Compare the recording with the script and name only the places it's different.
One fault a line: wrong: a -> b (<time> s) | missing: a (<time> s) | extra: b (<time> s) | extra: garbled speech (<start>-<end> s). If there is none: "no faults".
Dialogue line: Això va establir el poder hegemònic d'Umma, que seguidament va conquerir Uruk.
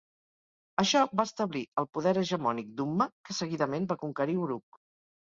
no faults